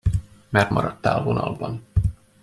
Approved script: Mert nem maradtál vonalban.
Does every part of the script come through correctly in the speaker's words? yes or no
no